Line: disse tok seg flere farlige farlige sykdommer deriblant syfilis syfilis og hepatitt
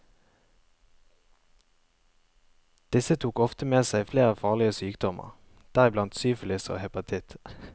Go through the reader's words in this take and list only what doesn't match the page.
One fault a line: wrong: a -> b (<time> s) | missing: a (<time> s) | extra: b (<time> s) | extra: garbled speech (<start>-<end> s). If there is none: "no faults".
extra: ofte med (3.4 s)
missing: farlige (4.7 s)
missing: syfilis (6.7 s)